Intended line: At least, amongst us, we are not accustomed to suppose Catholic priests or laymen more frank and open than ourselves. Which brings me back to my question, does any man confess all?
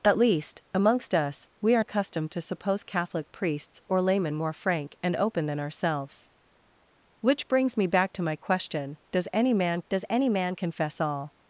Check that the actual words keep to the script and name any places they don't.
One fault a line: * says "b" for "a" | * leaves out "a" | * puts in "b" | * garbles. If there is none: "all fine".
* leaves out "not"
* puts in "does any man"